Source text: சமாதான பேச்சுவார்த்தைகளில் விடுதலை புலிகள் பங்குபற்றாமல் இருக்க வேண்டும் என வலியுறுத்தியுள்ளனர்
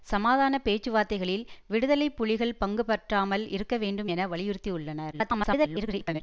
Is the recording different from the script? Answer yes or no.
yes